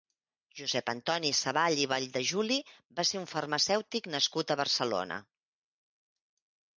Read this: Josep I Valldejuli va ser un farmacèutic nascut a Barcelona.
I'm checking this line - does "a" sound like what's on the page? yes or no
yes